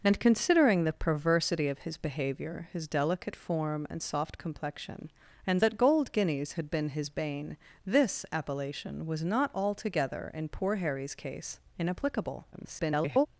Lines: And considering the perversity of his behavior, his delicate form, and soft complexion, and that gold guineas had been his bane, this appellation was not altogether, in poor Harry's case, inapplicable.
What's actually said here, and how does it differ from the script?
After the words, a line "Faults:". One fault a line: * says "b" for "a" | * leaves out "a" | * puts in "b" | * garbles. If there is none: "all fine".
And considering the perversity of his behavior, his delicate form, and soft complexion, and that gold guineas had been his bane, this appellation was not altogether, in poor Harry's case, inapplicable. [garbled]
Faults:
* garbles